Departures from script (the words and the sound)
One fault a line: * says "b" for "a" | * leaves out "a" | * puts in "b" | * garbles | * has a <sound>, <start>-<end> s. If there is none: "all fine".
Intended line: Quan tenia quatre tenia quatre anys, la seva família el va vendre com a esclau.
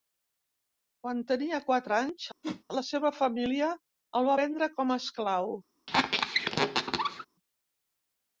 * leaves out "tenia quatre"
* has a whoosh, 2.4-2.6 s
* has a squeak, 5.9-7.3 s